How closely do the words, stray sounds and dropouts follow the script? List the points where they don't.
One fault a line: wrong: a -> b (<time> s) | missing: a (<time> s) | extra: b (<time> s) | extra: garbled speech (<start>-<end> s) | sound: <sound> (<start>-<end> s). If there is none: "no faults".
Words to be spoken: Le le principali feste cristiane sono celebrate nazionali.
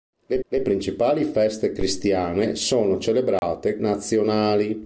sound: dropout (3.4-3.4 s)